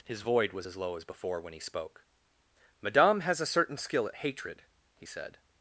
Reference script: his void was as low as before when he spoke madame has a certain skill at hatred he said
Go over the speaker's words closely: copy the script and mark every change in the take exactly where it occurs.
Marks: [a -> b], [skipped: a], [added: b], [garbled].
his void was as low as before when he spoke madame has a certain skill at hatred he said